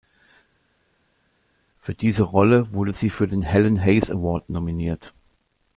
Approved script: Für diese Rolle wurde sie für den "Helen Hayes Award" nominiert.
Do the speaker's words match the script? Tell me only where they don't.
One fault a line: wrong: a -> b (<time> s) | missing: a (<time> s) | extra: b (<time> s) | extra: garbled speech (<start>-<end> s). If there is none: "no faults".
no faults